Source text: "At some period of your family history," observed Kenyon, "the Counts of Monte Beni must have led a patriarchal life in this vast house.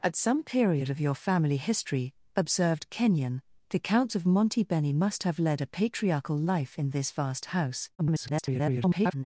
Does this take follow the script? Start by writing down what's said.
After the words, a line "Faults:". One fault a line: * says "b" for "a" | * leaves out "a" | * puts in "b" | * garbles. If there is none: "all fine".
"At some period of your family history," observed Kenyon, "the Counts of Monte Beni must have led a patriarchal life in this vast house. [garbled]
Faults:
* garbles